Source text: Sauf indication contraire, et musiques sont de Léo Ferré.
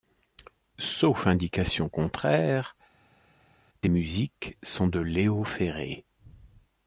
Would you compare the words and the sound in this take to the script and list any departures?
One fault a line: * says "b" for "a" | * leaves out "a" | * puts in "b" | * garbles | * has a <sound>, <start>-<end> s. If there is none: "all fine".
all fine